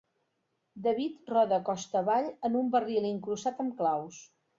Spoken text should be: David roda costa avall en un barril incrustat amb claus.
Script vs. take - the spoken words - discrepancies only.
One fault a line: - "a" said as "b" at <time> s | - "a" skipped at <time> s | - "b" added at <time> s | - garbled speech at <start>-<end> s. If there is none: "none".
none